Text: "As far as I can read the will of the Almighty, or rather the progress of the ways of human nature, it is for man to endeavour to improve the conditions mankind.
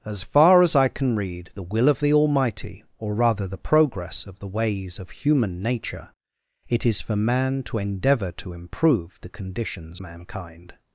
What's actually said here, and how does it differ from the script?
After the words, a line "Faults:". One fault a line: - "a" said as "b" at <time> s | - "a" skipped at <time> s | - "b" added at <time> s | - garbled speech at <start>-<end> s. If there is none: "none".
"As far as I can read the will of the Almighty, or rather the progress of the ways of human nature, it is for man to endeavour to improve the conditions mankind.
Faults:
none